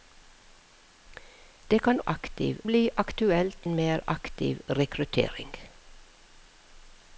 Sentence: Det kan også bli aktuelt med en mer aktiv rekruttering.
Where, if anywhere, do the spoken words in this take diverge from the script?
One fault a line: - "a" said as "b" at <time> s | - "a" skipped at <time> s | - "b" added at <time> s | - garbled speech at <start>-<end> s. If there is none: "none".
- "også" said as "aktiv" at 2.1 s
- "med" skipped at 3.7 s